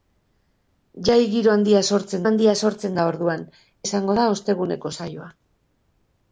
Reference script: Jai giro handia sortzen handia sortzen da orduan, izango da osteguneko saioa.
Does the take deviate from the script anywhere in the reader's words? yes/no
no